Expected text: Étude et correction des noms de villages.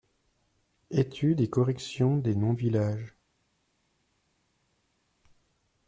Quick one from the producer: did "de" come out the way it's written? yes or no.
no